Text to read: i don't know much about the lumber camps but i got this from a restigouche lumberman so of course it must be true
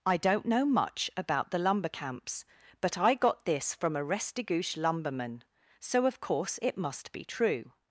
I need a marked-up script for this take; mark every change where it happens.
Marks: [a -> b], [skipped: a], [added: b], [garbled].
i don't know much about the lumber camps but i got this from a restigouche lumberman so of course it must be true